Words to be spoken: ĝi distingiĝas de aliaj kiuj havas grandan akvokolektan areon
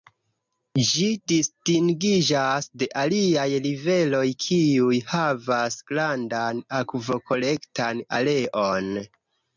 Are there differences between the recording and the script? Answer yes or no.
yes